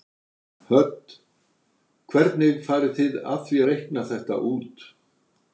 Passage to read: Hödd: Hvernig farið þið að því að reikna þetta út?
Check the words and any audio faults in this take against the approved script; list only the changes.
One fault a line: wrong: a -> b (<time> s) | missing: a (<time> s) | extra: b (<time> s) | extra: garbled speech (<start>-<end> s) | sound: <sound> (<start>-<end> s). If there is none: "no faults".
missing: að (3.6 s)